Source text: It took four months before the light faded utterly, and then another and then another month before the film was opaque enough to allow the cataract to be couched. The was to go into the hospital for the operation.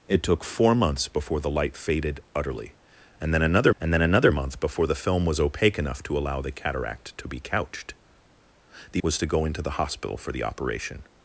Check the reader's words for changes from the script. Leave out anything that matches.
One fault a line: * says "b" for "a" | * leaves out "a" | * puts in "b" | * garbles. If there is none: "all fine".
all fine